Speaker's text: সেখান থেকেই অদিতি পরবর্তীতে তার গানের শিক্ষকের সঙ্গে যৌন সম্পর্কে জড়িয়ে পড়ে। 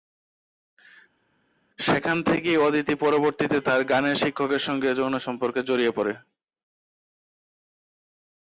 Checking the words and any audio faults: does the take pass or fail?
pass